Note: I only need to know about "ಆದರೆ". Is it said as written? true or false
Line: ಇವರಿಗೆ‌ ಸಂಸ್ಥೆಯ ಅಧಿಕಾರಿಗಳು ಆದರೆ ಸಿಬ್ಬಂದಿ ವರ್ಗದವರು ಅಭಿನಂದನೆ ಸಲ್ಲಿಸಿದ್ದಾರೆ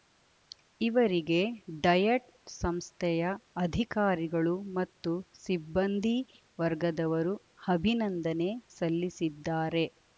false